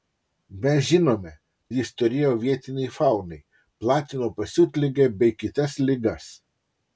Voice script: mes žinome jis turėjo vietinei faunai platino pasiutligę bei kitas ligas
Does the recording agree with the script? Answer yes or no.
yes